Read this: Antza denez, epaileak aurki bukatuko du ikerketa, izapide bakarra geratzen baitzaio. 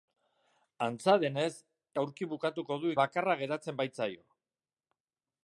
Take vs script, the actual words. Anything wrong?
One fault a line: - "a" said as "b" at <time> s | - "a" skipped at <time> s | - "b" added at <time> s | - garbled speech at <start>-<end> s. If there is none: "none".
- "epaileak" skipped at 1.5 s
- "ikerketa izapide" skipped at 2.9 s